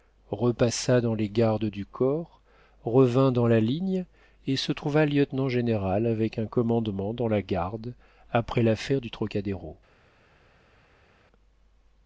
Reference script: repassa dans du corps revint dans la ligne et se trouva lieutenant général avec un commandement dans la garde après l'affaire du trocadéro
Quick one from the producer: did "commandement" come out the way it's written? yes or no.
yes